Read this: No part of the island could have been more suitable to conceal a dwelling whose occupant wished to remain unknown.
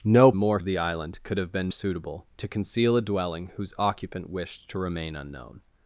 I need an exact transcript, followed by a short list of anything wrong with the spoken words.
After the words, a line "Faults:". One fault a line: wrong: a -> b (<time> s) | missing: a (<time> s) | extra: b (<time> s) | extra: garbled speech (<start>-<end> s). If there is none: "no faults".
No more of the island could have been suitable to conceal a dwelling whose occupant wished to remain unknown.
Faults:
wrong: part -> more (0.3 s)
missing: more (1.7 s)